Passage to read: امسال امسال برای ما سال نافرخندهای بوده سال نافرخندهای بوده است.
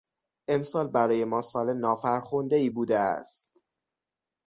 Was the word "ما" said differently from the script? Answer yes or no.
no